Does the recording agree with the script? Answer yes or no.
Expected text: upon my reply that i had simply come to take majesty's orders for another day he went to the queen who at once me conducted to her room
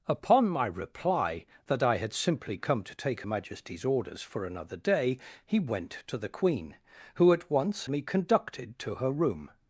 yes